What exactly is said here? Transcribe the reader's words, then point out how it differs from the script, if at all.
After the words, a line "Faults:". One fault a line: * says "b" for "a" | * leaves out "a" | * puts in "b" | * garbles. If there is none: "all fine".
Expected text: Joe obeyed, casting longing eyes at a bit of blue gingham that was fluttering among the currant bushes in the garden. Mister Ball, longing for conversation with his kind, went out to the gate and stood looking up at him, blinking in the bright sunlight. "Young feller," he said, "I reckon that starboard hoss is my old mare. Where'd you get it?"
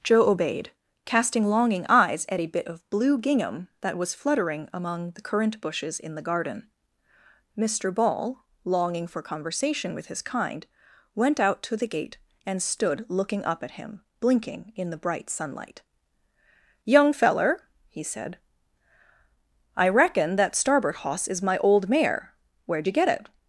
Joe obeyed, casting longing eyes at a bit of blue gingham that was fluttering among the currant bushes in the garden. Mister Ball, longing for conversation with his kind, went out to the gate and stood looking up at him, blinking in the bright sunlight. "Young feller," he said, "I reckon that starboard hoss is my old mare. Where'd you get it?"
Faults:
all fine